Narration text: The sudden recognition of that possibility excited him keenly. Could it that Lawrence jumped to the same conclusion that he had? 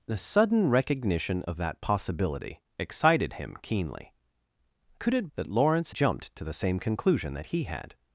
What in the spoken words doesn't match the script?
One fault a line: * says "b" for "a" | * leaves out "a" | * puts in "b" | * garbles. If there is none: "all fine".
all fine